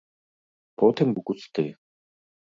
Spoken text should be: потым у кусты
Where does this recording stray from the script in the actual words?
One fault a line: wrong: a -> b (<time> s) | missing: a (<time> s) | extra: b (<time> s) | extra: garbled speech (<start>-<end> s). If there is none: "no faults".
no faults